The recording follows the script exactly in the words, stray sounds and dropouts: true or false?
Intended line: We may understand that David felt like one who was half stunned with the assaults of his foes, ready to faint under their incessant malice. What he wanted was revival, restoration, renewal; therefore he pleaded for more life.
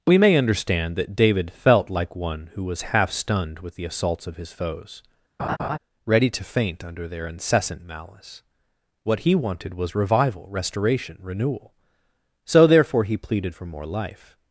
false